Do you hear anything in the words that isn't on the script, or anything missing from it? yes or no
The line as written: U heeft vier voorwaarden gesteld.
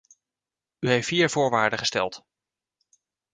no